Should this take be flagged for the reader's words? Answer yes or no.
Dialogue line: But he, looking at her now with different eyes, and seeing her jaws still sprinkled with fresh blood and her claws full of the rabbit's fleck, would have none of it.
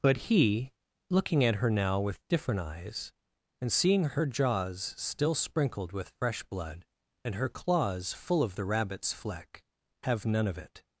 yes